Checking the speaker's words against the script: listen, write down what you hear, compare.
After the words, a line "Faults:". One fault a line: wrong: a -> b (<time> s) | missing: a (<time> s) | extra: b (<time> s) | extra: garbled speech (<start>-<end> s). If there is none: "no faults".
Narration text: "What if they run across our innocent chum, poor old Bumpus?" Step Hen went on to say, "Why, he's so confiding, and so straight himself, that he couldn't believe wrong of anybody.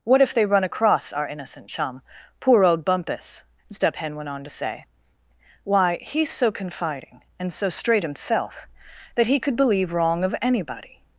"What if they run across our innocent chum, poor old Bumpus?" Step Hen went on to say, "Why, he's so confiding, and so straight himself, that he could believe wrong of anybody.
Faults:
wrong: couldn't -> could (9.4 s)